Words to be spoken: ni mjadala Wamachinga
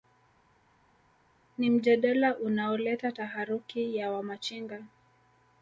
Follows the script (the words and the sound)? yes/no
no